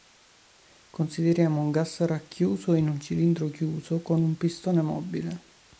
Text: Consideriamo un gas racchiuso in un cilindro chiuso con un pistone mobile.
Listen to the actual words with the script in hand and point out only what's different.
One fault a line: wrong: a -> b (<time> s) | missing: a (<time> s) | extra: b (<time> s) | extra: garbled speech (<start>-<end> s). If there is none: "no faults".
no faults